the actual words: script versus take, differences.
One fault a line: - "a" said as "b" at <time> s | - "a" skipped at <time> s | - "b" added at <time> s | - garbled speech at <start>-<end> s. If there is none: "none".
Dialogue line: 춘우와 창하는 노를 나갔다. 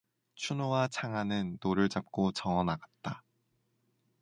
- "잡고 저어" added at 1.9 s